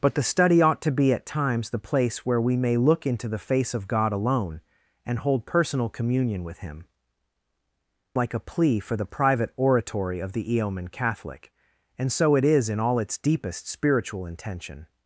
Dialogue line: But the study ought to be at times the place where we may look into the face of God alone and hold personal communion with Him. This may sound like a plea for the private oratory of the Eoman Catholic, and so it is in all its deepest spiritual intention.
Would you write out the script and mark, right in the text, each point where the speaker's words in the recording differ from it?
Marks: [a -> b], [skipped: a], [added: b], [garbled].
But the study ought to be at times the place where we may look into the face of God alone and hold personal communion with Him. [skipped: This may sound] like a plea for the private oratory of the Eoman Catholic, and so it is in all its deepest spiritual intention.